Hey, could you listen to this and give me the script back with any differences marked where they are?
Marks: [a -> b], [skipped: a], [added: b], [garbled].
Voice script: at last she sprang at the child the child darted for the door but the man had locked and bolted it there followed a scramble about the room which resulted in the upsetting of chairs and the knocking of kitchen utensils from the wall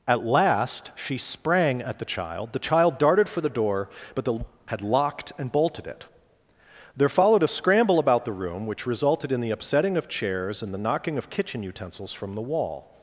at last she sprang at the child the child darted for the door but the [skipped: man] had locked and bolted it there followed a scramble about the room which resulted in the upsetting of chairs and the knocking of kitchen utensils from the wall